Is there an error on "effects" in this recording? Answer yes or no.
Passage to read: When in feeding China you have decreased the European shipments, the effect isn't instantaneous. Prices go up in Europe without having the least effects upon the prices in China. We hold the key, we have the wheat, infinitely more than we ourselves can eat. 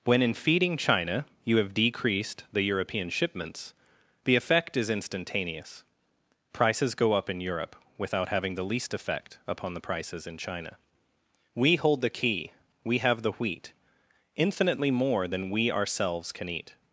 yes